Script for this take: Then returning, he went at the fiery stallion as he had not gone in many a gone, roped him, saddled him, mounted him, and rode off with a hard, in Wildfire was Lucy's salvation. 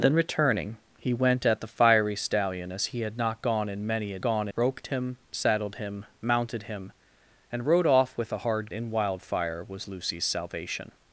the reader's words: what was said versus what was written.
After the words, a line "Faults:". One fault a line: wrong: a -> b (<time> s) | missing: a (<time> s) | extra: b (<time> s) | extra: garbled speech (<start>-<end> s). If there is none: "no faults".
Then returning, he went at the fiery stallion as he had not gone in many a gone, roped him, saddled him, mounted him, and rode off with a hard, in Wildfire was Lucy's salvation.
Faults:
no faults